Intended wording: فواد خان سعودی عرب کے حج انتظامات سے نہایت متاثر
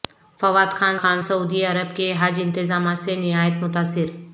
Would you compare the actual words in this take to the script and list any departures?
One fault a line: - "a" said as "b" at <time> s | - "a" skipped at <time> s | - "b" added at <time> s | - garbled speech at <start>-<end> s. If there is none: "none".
- "خان" added at 0.9 s